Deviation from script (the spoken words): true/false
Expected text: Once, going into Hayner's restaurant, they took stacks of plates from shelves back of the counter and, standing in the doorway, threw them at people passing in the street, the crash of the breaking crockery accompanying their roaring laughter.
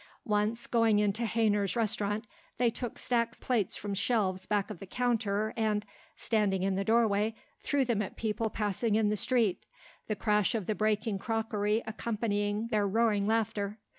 true